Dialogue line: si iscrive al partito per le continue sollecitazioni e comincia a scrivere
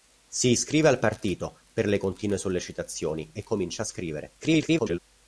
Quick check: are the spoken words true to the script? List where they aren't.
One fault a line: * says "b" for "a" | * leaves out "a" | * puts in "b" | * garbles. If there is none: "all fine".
* garbles